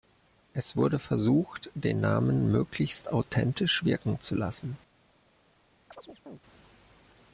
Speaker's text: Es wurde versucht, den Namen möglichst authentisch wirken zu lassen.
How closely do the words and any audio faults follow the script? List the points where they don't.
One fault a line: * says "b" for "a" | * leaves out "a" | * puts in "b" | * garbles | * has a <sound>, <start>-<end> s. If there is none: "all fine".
* has a chirp, 5.9-6.4 s